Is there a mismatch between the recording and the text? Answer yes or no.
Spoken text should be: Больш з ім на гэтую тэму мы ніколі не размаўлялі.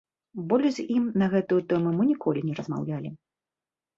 no